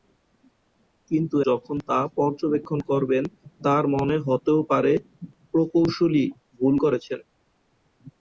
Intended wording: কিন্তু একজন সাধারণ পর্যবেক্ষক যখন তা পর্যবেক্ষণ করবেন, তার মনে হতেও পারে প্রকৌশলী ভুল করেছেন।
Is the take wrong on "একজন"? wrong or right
wrong